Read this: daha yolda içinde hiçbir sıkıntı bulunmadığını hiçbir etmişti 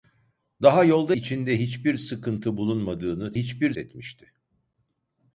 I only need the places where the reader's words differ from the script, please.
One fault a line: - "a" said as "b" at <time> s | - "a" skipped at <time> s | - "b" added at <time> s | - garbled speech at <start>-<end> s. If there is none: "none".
none